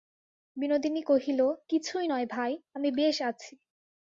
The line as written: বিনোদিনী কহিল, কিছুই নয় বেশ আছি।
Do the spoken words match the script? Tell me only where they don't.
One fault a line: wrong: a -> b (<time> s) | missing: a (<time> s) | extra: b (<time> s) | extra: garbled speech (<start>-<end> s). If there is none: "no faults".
extra: ভাই আমি (2.3 s)